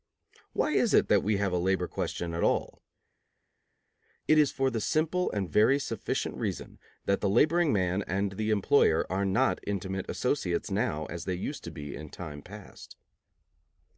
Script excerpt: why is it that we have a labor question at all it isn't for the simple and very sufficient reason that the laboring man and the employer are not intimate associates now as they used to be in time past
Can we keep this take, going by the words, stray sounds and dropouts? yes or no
no